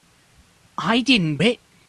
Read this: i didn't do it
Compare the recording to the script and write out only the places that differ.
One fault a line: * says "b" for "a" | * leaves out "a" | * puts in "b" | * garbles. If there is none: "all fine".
* leaves out "do"